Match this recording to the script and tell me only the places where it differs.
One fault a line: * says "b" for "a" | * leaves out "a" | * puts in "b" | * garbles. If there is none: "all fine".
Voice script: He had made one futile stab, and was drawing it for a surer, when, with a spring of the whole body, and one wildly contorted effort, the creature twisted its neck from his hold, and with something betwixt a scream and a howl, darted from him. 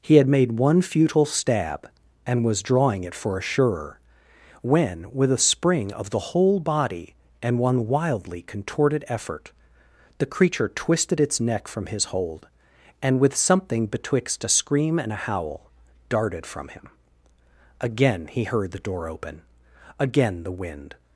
* puts in "Again he heard the door open again the wind"